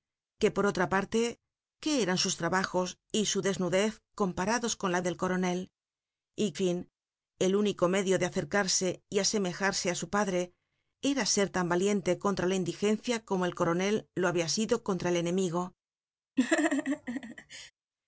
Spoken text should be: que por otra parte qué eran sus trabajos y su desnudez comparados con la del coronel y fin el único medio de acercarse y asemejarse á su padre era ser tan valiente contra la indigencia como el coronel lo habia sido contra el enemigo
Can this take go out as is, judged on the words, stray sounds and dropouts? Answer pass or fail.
fail